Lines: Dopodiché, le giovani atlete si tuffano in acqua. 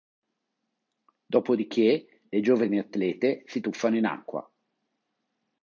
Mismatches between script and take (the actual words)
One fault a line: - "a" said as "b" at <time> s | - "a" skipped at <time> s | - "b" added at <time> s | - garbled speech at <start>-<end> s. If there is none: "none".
none